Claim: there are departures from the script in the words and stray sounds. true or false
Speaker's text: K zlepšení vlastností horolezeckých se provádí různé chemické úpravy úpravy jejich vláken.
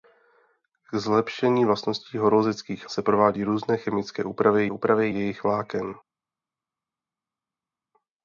false